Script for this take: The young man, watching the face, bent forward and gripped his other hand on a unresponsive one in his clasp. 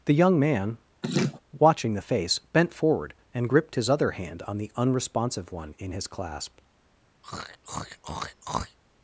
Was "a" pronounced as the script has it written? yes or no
no